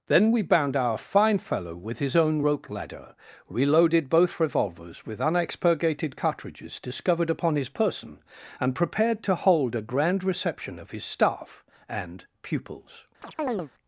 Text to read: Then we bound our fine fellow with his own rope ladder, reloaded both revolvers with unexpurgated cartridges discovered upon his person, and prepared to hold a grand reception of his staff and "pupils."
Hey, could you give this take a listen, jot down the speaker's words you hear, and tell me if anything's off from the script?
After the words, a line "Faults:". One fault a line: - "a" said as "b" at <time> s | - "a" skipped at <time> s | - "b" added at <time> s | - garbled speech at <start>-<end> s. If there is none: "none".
Then we bound our fine fellow with his own rope ladder, reloaded both revolvers with unexpurgated cartridges discovered upon his person, and prepared to hold a grand reception of his staff and "pupils."
Faults:
none